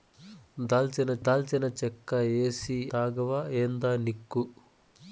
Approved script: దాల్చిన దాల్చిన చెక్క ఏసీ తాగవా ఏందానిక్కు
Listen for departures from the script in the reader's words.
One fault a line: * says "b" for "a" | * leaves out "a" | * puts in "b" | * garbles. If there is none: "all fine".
all fine